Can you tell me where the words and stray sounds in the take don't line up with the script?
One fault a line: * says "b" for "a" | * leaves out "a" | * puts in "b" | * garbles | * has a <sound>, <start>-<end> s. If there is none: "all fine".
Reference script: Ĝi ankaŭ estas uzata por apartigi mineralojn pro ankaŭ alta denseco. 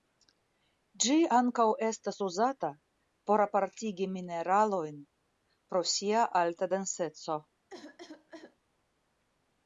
* says "sia" for "ankaŭ"
* has a cough, 7.7-8.6 s